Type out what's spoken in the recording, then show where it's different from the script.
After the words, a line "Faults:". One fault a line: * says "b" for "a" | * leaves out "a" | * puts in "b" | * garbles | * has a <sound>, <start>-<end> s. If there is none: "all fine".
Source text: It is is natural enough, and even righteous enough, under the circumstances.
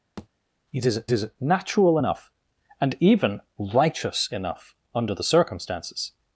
It is is natural enough, and even righteous enough, under the circumstances.
Faults:
* has a thud, 0.2-0.3 s